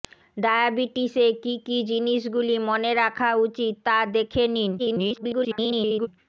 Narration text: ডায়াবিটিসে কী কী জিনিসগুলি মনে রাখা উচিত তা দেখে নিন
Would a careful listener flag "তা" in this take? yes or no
no